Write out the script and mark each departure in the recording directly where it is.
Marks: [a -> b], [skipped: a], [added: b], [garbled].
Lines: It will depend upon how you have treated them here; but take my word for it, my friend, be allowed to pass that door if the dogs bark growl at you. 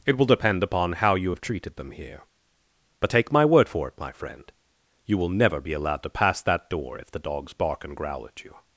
It will depend upon how you have treated them here; but take my word for it, my friend, [added: you will never] be allowed to pass that door if the dogs bark [added: and] growl at you.